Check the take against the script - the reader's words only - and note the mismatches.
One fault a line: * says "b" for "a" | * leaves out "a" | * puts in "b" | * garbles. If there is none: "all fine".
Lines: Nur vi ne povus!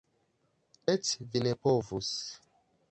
* says "Eĉ" for "Nur"